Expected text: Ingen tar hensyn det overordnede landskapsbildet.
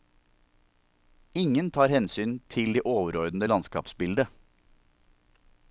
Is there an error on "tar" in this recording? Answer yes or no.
no